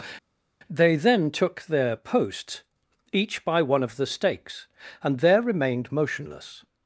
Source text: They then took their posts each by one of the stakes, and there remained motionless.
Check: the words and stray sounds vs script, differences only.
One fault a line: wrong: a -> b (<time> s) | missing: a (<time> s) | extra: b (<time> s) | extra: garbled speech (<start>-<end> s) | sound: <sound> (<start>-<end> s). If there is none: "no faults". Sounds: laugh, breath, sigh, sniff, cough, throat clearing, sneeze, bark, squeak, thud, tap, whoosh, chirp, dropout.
no faults